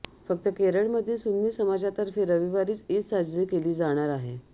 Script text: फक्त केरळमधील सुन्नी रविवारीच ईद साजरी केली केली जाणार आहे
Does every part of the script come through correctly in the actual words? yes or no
no